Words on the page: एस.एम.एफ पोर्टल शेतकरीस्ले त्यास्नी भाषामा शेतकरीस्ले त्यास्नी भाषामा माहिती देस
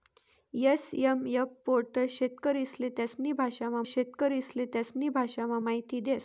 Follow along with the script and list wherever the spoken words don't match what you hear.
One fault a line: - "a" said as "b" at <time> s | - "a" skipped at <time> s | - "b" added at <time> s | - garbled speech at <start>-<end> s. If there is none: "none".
none